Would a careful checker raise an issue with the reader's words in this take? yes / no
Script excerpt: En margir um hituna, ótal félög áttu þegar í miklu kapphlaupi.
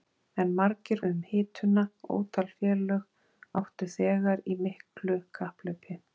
no